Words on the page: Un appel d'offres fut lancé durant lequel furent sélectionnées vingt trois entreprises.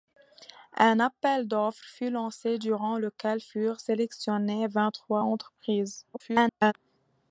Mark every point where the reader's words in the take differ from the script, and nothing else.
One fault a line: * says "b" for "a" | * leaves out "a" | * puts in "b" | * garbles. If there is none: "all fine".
* garbles